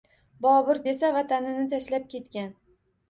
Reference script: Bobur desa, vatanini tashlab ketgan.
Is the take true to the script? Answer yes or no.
yes